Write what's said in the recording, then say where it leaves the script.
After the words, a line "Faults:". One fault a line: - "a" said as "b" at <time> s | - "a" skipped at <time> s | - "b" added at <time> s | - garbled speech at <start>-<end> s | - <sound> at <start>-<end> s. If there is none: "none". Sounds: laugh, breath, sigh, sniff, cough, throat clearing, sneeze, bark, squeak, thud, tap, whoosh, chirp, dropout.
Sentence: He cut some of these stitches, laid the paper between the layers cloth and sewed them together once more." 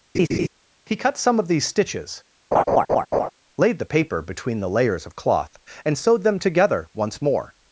He cut some of these stitches, laid the paper between the layers of cloth and sewed them together once more."
Faults:
- laugh at 0.1-0.5 s
- laugh at 2.5-3.3 s
- "of" added at 5.1 s